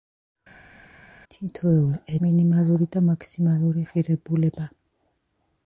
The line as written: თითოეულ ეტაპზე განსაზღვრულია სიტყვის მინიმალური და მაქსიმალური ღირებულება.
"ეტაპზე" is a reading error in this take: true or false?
true